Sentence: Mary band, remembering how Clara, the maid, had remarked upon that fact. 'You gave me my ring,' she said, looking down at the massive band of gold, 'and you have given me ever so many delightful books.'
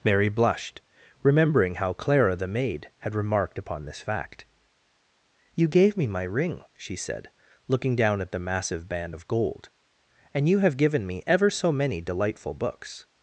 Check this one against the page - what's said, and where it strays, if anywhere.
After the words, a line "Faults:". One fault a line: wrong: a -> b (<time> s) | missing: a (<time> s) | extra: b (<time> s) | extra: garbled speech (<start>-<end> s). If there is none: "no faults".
Mary blushed, remembering how Clara, the maid, had remarked upon this fact. 'You gave me my ring,' she said, looking down at the massive band of gold, 'and you have given me ever so many delightful books.'
Faults:
wrong: band -> blushed (0.3 s)
wrong: that -> this (3.9 s)